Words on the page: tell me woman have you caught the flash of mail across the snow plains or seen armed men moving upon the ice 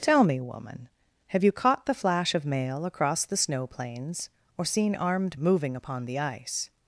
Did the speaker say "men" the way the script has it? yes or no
no